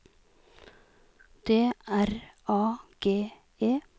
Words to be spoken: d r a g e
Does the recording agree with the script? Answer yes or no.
yes